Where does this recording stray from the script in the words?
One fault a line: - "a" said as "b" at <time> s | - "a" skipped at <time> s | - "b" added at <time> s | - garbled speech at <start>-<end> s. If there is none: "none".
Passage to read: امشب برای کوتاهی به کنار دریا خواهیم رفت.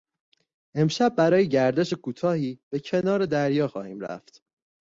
- "گردش" added at 1.5 s